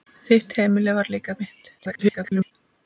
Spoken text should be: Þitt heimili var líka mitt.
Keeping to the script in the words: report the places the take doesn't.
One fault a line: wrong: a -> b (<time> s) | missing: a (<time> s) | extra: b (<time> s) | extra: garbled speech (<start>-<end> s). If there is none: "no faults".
extra: garbled speech (1.8-2.5 s)